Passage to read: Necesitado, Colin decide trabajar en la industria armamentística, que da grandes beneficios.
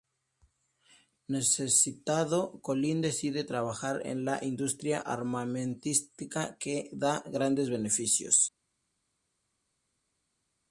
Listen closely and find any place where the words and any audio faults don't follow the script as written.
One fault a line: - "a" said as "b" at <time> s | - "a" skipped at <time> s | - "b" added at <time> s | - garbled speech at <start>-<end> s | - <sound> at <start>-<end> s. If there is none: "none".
none